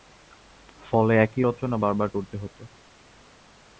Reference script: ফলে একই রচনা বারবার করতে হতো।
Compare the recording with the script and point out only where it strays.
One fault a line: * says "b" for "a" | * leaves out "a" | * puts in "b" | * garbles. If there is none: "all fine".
all fine